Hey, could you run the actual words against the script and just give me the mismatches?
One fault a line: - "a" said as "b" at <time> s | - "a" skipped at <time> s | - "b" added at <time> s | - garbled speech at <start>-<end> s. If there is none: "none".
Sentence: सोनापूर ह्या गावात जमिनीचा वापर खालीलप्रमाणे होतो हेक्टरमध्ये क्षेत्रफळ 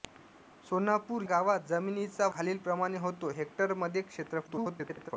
- "ह्या" skipped at 1.2 s
- "वापर" skipped at 2.3 s
- garbled speech at 4.5-5.1 s